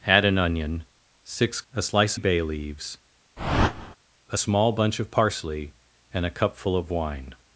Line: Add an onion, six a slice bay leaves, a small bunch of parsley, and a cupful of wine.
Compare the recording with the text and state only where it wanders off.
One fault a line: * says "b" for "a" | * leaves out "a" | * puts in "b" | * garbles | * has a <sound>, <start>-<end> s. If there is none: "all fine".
* has a whoosh, 3.4-4.0 s